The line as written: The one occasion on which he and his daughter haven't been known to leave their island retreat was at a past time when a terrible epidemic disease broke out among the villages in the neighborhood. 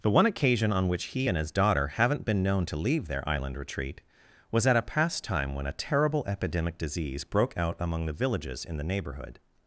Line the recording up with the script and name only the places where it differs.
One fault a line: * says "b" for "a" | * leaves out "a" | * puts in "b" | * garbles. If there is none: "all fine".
all fine